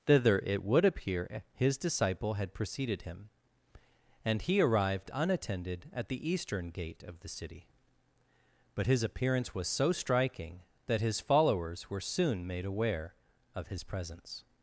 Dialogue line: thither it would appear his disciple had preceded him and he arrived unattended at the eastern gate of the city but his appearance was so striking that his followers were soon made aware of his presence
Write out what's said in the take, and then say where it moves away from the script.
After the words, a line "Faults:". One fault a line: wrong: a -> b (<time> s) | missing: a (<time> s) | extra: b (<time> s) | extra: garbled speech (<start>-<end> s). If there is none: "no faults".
thither it would appear his disciple had preceded him and he arrived unattended at the eastern gate of the city but his appearance was so striking that his followers were soon made aware of his presence
Faults:
no faults